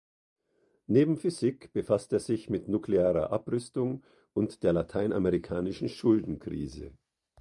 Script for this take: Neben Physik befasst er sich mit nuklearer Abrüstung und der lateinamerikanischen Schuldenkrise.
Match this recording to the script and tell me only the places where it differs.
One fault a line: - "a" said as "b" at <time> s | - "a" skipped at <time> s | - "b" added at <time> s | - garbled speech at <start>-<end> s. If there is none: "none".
none